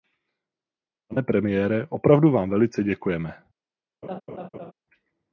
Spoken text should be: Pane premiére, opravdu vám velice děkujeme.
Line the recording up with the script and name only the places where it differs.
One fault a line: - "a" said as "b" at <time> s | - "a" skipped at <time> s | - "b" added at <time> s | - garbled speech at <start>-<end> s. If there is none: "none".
none